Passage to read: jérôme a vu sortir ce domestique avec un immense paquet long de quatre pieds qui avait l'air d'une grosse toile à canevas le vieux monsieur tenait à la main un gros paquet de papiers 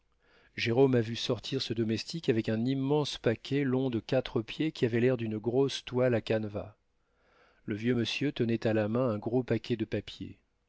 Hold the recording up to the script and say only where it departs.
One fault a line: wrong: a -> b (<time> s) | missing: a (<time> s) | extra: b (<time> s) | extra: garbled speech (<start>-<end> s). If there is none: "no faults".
no faults